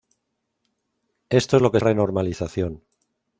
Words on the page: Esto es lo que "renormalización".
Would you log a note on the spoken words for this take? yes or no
no